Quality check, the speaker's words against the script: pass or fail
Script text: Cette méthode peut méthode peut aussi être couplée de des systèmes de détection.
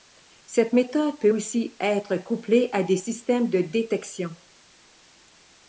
fail